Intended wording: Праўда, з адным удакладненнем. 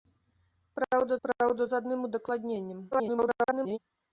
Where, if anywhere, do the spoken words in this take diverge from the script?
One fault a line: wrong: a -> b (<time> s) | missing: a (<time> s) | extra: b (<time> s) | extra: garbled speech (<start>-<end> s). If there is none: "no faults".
extra: праўда (1.3 s)
extra: garbled speech (2.9-3.8 s)